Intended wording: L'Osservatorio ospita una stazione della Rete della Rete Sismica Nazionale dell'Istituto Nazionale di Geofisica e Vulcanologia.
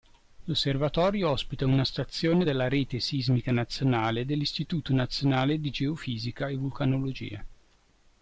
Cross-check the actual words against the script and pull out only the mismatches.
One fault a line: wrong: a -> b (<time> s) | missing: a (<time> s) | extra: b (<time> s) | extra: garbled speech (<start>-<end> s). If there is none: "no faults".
missing: della Rete (3.0 s)